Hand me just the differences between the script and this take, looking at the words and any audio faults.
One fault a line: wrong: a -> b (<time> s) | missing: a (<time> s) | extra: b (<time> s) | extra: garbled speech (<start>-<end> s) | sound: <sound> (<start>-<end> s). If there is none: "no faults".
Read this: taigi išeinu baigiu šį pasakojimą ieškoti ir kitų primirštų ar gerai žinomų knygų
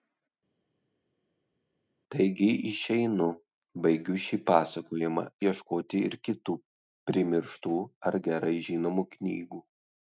no faults